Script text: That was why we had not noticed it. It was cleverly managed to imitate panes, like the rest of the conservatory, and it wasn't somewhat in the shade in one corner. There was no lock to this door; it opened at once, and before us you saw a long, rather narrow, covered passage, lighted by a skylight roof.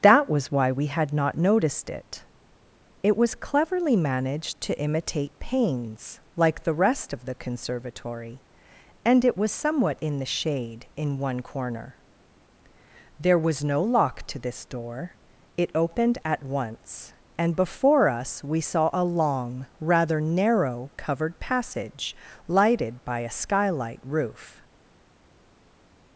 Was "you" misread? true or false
true